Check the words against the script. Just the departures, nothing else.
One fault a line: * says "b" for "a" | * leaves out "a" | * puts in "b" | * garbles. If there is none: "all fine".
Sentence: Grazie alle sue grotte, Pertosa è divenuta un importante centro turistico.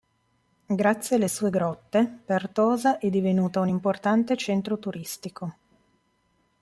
all fine